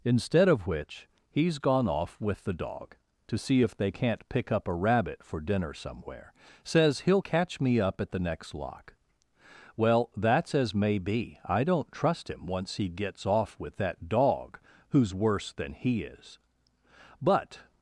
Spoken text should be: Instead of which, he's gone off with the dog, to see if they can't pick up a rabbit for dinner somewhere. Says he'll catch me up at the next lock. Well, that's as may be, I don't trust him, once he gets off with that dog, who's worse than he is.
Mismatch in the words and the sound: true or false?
true